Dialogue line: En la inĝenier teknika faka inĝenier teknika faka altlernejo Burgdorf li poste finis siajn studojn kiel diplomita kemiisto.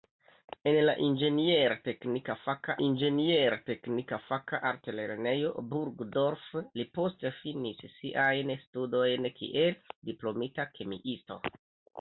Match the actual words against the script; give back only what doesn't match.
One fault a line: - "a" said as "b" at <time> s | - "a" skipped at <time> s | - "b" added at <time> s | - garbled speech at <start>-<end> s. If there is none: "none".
none